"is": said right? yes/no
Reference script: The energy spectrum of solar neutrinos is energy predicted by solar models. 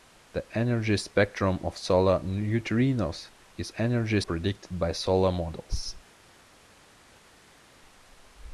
yes